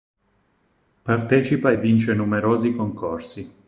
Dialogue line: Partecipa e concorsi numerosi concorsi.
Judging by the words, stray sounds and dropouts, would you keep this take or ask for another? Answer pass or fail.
fail